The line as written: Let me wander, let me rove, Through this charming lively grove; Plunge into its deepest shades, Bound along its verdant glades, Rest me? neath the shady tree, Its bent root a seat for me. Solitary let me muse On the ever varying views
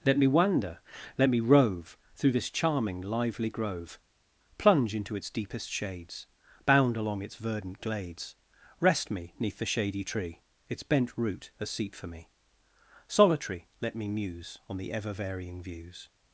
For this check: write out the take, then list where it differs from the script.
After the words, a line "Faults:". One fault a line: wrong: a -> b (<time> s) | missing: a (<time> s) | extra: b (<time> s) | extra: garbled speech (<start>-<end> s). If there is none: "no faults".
Let me wander, let me rove, Through this charming lively grove; Plunge into its deepest shades, Bound along its verdant glades, Rest me? neath the shady tree, Its bent root a seat for me. Solitary let me muse On the ever varying views
Faults:
no faults